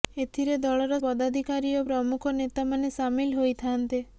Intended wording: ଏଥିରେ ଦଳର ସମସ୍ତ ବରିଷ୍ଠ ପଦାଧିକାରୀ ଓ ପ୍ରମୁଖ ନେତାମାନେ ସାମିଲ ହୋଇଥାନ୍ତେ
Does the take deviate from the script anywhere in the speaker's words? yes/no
yes